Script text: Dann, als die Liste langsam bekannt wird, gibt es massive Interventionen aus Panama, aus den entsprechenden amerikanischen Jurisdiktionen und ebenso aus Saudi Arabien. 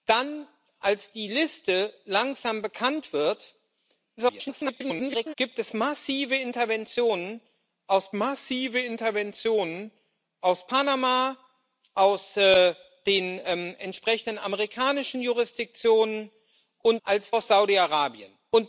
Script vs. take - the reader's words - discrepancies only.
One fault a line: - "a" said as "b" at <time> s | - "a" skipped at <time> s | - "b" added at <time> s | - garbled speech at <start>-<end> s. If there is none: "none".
- garbled speech at 4.2-5.3 s
- "massive Interventionen aus" added at 8.1 s
- "ebenso" said as "als" at 17.0 s